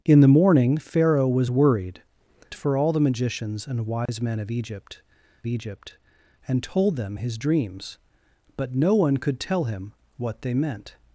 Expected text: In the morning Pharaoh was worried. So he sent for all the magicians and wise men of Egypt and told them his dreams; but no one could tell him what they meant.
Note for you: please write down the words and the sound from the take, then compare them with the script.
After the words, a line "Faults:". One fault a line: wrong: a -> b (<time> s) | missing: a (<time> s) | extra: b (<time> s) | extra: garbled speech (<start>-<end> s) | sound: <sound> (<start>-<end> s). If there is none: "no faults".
In the morning Pharaoh was worried. For all the magicians and wise men of Egypt Egypt and told them his dreams; but no one could tell him what they meant.
Faults:
missing: So he sent (2.0 s)
sound: dropout (4.1-4.1 s)
extra: Egypt (5.5 s)